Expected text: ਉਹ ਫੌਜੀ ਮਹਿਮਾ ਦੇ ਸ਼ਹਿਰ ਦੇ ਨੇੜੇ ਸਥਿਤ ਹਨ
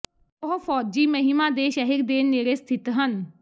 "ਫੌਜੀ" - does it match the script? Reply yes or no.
yes